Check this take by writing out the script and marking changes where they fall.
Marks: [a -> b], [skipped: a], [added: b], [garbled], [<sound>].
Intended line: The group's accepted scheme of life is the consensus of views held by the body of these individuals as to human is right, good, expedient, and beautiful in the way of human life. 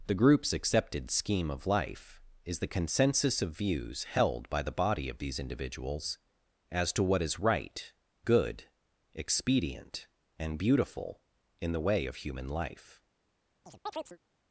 The group's accepted scheme of life is the consensus of views held by the body of these individuals as to [human -> what] is right, good, expedient, and beautiful in the way of human life. [chirp]